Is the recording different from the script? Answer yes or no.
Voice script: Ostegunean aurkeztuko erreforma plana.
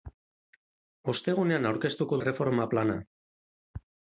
no